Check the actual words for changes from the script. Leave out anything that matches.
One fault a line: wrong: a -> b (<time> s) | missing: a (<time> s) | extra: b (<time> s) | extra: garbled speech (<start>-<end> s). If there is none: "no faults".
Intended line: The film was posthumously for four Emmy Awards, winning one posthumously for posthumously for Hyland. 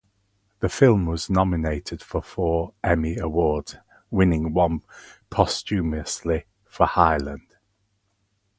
wrong: posthumously -> nominated (1.3 s)
missing: posthumously for (6.9 s)